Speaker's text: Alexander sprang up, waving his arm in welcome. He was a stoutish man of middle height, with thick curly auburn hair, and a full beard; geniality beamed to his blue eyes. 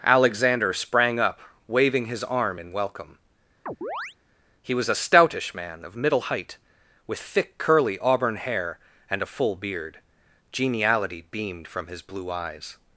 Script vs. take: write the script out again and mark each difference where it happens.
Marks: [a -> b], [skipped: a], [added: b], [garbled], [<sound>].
Alexander sprang up, waving his arm in welcome. [chirp] He was a stoutish man of middle height, with thick curly auburn hair, and a full beard; geniality beamed [to -> from] his blue eyes.